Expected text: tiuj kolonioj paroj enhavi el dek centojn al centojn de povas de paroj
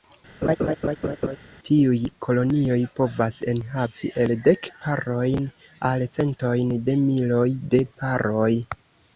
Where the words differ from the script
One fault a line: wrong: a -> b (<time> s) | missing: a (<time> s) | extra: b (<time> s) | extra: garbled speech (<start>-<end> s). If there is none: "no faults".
wrong: paroj -> povas (3.0 s)
wrong: centojn -> parojn (4.9 s)
wrong: povas -> miloj (7.1 s)